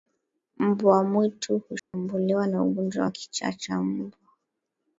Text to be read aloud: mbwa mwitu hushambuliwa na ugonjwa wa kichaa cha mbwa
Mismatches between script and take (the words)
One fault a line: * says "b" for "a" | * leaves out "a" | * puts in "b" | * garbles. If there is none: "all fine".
all fine